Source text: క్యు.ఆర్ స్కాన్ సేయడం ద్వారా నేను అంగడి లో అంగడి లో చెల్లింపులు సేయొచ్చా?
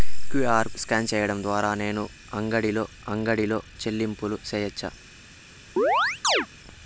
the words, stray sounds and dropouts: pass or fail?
fail